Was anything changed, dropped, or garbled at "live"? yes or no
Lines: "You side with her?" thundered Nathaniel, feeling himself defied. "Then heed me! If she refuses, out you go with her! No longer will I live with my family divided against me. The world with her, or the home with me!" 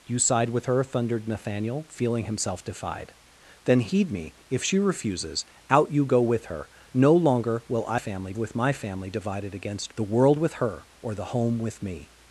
yes